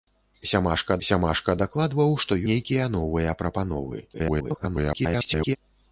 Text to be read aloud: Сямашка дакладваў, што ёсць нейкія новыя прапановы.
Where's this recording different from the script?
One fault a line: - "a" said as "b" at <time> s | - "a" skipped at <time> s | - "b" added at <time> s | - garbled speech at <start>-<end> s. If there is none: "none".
- "сямашка" added at 1.1 s
- "ёсць" skipped at 2.4 s
- garbled speech at 4.1-5.6 s